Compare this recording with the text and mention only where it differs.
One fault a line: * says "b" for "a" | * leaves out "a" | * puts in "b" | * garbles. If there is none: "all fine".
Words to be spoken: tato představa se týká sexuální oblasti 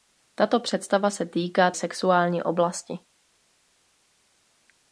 all fine